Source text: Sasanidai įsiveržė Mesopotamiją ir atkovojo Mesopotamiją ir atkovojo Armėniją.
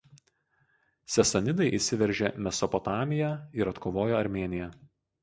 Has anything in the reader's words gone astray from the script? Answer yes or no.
yes